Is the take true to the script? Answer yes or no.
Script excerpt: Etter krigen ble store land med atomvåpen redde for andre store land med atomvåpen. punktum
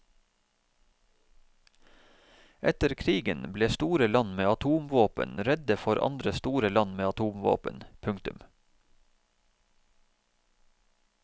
yes